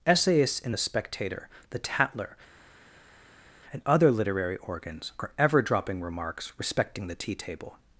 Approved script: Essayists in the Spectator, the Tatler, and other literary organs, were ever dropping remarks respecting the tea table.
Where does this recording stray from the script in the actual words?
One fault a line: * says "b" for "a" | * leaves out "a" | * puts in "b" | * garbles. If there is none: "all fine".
* says "are" for "were"